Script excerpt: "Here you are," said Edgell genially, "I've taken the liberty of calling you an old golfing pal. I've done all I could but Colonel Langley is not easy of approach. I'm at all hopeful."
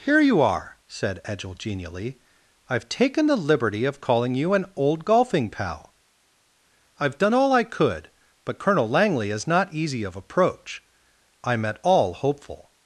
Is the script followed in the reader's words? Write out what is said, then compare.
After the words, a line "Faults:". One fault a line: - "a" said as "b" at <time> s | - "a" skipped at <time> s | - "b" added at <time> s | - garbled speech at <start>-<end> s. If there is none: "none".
"Here you are," said Edgell genially, "I've taken the liberty of calling you an old golfing pal. I've done all I could but Colonel Langley is not easy of approach. I'm at all hopeful."
Faults:
none